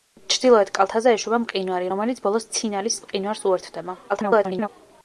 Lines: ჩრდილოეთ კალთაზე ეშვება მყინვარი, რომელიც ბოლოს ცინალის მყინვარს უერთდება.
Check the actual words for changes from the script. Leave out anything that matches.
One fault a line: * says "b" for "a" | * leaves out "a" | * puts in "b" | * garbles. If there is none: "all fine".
* garbles